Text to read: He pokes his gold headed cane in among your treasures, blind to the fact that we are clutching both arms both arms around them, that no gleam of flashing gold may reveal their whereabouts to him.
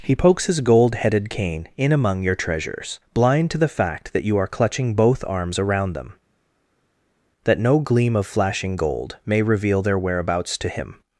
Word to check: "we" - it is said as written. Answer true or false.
false